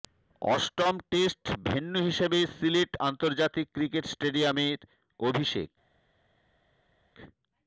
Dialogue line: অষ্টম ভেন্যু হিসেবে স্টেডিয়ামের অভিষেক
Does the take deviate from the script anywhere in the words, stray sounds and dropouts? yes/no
yes